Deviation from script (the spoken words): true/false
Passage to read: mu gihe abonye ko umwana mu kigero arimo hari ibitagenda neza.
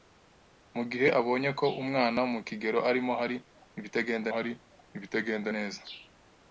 true